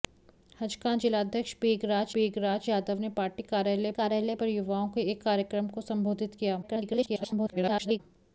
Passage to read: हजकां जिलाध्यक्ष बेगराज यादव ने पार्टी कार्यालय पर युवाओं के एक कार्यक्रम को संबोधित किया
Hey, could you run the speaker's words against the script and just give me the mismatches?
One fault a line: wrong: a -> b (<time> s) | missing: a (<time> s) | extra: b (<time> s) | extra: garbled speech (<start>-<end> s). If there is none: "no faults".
extra: बेगराज (2.1 s)
extra: कार्यालय (3.9 s)
extra: garbled speech (6.6-8.0 s)